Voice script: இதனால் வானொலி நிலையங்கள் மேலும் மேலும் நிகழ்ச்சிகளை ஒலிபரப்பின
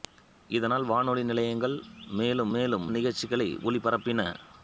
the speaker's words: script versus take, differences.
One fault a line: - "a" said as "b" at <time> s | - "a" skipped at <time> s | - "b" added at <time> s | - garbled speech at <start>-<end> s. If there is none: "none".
none